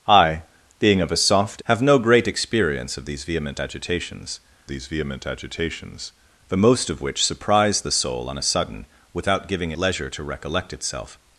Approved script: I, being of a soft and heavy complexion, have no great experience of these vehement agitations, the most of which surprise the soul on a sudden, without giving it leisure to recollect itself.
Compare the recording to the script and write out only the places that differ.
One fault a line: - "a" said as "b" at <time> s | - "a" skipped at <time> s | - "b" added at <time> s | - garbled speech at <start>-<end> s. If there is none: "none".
- "and heavy complexion" skipped at 1.6 s
- "these vehement agitations" added at 4.7 s
- "it" skipped at 9.7 s